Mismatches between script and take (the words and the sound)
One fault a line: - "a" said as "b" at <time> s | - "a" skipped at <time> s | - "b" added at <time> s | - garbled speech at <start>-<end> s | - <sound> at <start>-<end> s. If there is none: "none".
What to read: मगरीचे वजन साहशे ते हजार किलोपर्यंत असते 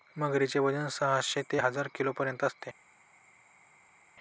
none